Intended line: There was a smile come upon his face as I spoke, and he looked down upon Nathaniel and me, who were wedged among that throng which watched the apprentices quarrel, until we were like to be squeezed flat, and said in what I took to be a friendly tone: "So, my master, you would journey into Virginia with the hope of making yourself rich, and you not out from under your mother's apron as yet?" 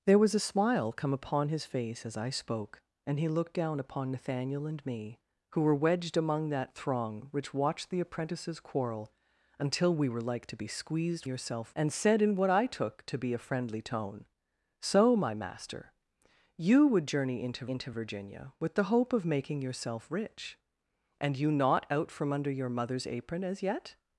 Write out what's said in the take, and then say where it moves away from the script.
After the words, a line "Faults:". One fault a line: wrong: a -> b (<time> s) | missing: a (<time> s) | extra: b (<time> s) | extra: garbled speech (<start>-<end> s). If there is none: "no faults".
There was a smile come upon his face as I spoke, and he looked down upon Nathaniel and me, who were wedged among that throng which watched the apprentices quarrel, until we were like to be squeezed yourself, and said in what I took to be a friendly tone: "So, my master, you would journey into into Virginia with the hope of making yourself rich, and you not out from under your mother's apron as yet?"
Faults:
wrong: flat -> yourself (11.3 s)
extra: into (17.7 s)